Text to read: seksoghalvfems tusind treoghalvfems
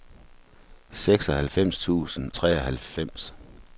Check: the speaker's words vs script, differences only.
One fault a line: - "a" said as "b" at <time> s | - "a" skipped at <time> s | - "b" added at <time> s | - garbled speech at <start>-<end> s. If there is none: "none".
none